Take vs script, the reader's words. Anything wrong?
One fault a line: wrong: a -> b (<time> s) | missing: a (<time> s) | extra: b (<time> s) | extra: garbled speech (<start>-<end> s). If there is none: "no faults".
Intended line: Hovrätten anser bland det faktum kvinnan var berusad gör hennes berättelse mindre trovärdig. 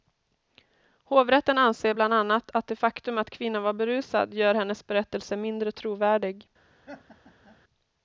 extra: annat att (2.1 s)
extra: att (3.2 s)